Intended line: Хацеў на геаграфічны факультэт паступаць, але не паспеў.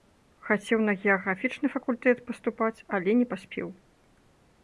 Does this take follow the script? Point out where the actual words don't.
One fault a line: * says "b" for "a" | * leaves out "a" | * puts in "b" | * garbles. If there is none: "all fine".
all fine